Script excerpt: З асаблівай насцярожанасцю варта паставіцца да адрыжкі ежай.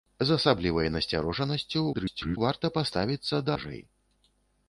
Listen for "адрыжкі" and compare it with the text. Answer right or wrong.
wrong